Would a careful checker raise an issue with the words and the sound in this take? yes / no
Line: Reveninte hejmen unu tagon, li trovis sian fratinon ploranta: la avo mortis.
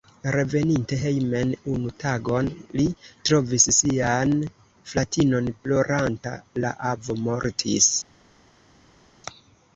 no